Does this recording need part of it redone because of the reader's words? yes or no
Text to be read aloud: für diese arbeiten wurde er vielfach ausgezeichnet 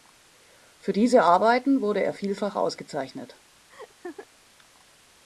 no